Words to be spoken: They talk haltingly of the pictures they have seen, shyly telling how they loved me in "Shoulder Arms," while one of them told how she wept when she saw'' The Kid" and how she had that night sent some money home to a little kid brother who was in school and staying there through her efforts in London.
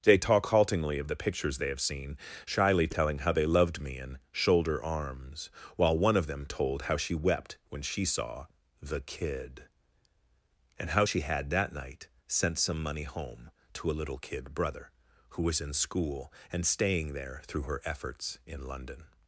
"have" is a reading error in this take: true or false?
false